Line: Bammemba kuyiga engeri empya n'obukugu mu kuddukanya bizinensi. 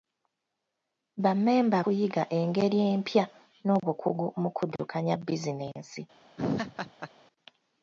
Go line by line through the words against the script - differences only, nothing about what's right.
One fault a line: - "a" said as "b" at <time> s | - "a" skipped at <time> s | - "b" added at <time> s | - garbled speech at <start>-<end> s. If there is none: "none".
none